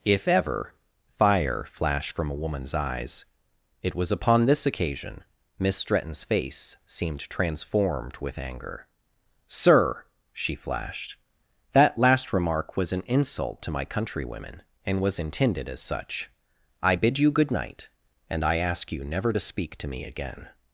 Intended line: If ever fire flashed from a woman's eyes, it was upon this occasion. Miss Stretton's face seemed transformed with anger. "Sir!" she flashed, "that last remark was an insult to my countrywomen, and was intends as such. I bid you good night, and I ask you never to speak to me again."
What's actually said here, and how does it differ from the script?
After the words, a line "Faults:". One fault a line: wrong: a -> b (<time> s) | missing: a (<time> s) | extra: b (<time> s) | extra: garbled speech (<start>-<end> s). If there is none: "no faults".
If ever fire flashed from a woman's eyes, it was upon this occasion. Miss Stretton's face seemed transformed with anger. "Sir!" she flashed, "that last remark was an insult to my countrywomen, and was intended as such. I bid you good night, and I ask you never to speak to me again."
Faults:
wrong: intends -> intended (15.2 s)